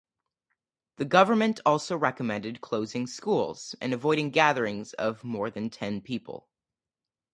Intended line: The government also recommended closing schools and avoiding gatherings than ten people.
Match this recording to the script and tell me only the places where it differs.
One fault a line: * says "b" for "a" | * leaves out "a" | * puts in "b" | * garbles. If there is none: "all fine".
* puts in "of more"